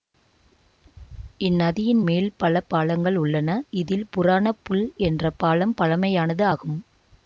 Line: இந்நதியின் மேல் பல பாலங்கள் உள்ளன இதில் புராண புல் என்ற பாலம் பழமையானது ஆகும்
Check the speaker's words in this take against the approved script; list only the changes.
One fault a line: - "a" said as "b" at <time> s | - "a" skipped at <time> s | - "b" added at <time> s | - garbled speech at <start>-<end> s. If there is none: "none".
none